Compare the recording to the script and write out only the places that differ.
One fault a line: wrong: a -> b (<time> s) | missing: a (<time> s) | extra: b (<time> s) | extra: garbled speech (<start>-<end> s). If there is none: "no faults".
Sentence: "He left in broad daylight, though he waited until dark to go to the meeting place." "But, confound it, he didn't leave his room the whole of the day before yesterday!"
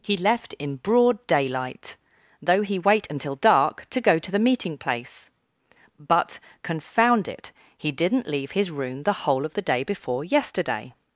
wrong: waited -> wait (2.8 s)